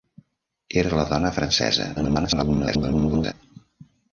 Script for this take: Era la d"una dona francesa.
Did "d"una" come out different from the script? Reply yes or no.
yes